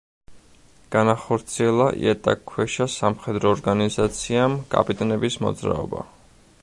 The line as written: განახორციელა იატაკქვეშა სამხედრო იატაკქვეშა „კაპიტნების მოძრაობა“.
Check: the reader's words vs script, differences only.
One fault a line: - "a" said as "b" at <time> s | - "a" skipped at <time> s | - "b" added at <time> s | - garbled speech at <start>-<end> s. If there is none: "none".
- "იატაკქვეშა" said as "ორგანიზაციამ" at 3.6 s